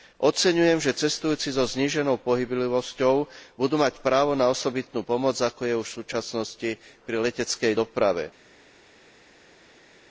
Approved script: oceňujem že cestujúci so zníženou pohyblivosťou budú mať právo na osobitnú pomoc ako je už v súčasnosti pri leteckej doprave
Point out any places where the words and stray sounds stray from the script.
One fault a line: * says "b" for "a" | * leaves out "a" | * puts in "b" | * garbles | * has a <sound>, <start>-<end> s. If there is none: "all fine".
all fine